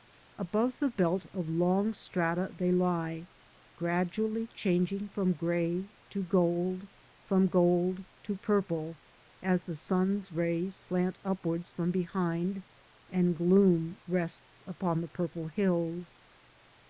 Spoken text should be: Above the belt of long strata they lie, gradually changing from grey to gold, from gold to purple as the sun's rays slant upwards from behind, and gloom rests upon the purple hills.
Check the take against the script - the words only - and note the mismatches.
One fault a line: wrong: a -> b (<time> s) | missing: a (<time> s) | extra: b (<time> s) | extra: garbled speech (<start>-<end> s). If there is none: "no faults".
no faults